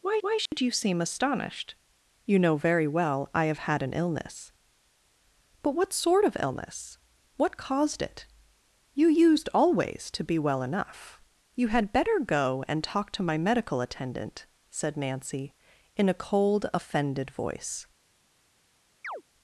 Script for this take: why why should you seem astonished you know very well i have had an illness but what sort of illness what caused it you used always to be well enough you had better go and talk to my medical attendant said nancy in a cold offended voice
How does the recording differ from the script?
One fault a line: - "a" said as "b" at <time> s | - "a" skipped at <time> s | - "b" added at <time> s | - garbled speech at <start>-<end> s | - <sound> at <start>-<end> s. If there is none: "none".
- dropout at 0.5-0.5 s
- chirp at 19.0-19.2 s